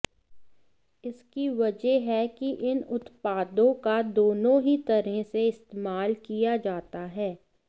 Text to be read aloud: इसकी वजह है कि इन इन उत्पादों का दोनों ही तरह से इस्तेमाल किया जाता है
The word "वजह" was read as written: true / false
true